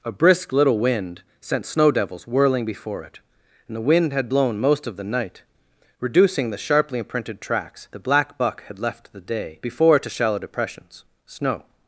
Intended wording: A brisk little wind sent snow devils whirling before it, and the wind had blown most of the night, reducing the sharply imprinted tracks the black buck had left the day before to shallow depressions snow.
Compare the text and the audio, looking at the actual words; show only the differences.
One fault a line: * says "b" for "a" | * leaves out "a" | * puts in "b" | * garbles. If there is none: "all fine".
all fine